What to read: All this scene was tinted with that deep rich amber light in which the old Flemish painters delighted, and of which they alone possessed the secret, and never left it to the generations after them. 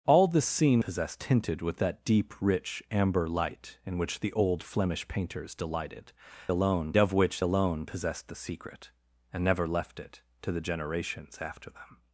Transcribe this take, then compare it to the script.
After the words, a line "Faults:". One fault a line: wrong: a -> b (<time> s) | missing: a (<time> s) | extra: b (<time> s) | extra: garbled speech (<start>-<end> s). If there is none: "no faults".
All this scene possessed tinted with that deep rich amber light in which the old Flemish painters delighted, alone of which alone possessed the secret, and never left it to the generations after them.
Faults:
wrong: was -> possessed (0.8 s)
wrong: and -> alone (6.5 s)
missing: they (7.4 s)